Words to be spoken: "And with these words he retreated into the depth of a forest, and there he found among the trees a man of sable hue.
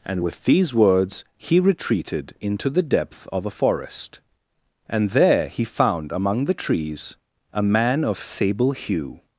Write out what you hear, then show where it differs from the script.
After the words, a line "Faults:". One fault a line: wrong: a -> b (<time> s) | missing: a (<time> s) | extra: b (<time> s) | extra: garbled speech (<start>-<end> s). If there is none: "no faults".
"And with these words he retreated into the depth of a forest, and there he found among the trees a man of sable hue.
Faults:
no faults